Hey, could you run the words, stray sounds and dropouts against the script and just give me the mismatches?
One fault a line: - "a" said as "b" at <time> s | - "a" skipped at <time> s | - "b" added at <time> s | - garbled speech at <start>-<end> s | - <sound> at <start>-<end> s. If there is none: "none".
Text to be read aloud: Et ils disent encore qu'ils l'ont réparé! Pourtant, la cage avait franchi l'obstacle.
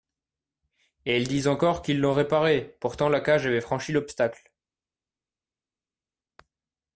none